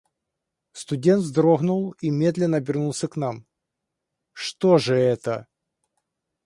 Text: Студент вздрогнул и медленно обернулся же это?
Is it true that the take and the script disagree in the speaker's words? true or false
true